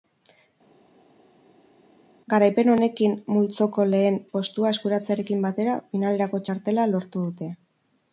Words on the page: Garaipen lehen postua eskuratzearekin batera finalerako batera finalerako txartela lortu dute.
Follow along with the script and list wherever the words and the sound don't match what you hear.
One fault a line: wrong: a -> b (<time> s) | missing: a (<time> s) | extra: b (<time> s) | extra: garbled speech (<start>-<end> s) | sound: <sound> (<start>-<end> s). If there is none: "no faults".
extra: honekin multzoko (2.7 s)
missing: batera finalerako (6.5 s)